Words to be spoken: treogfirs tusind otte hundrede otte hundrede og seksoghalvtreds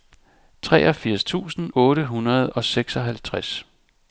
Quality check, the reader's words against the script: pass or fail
fail